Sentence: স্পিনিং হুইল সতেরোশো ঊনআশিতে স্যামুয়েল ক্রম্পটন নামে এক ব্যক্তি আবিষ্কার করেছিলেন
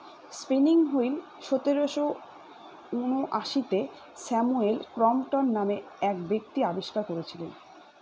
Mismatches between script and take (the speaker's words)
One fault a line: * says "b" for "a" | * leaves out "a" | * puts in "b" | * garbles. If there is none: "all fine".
all fine